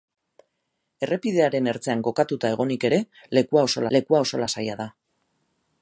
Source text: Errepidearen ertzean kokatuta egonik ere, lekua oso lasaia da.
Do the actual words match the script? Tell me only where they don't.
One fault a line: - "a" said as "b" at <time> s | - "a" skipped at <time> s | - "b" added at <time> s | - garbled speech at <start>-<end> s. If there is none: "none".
- "lekua oso" added at 4.0 s